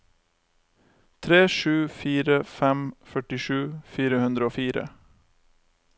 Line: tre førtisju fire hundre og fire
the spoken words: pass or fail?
fail